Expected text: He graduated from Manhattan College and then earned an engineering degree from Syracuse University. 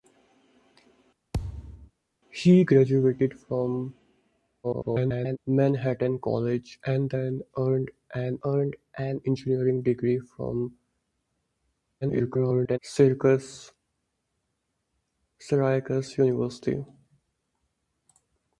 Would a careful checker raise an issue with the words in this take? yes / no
yes